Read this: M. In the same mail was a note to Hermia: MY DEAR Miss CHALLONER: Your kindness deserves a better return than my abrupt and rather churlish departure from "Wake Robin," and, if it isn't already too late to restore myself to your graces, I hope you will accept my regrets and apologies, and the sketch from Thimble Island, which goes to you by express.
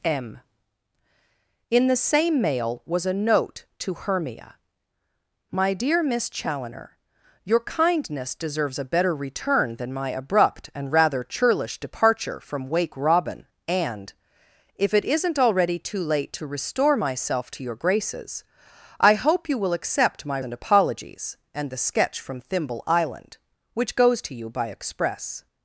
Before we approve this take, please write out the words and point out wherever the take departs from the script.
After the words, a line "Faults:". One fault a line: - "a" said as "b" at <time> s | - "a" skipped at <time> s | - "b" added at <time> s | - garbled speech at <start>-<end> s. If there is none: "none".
M. In the same mail was a note to Hermia: MY DEAR Miss CHALLONER: Your kindness deserves a better return than my abrupt and rather churlish departure from "Wake Robin," and, if it isn't already too late to restore myself to your graces, I hope you will accept my and apologies, and the sketch from Thimble Island, which goes to you by express.
Faults:
- "regrets" skipped at 20.4 s